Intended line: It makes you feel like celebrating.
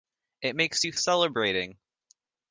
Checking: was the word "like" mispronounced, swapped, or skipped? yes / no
yes